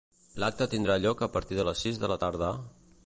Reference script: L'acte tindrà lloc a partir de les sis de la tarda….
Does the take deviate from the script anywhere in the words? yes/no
no